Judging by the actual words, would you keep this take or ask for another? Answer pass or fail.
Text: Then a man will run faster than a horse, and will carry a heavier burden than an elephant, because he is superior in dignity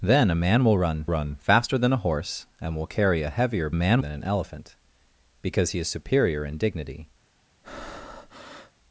fail